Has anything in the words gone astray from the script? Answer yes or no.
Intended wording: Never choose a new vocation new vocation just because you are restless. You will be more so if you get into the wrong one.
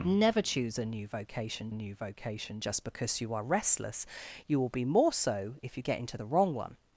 no